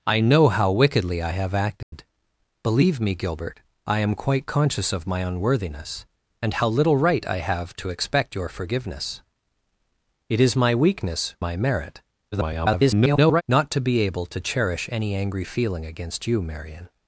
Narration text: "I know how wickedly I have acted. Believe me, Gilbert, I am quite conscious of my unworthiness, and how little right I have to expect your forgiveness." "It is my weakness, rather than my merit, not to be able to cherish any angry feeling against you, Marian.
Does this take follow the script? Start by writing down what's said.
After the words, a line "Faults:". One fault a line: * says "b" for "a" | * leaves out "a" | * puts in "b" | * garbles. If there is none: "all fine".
"I know how wickedly I have acted. Believe me, Gilbert, I am quite conscious of my unworthiness, and how little right I have to expect your forgiveness." "It is my weakness, my merit, [garbled] not to be able to cherish any angry feeling against you, Marian.
Faults:
* leaves out "rather than"
* garbles